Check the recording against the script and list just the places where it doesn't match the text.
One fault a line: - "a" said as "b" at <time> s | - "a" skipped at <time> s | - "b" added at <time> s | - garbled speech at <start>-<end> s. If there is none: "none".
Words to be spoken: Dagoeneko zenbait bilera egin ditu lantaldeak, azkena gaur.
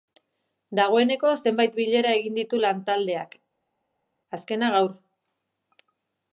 none